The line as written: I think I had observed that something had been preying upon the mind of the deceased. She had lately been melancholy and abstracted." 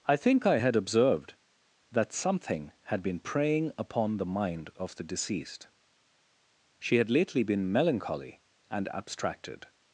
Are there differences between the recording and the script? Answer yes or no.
no